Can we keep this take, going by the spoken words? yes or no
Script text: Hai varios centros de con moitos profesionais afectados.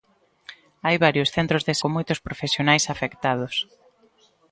yes